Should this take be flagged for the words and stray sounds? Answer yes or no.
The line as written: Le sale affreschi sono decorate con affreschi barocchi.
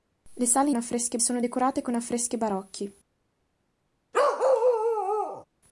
yes